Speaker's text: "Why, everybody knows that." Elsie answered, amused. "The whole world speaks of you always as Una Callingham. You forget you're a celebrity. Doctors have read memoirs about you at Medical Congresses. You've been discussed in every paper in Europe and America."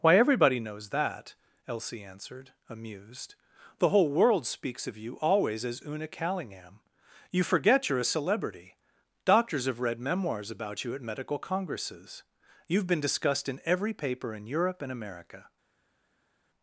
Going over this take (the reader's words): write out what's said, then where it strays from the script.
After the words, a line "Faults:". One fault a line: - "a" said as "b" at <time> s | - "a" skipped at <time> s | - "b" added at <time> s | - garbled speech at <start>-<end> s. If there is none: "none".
"Why, everybody knows that." Elsie answered, amused. "The whole world speaks of you always as Una Callingham. You forget you're a celebrity. Doctors have read memoirs about you at Medical Congresses. You've been discussed in every paper in Europe and America."
Faults:
none